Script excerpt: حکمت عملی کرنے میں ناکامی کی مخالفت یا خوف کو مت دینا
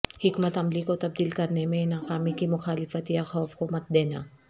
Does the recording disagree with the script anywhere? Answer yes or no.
yes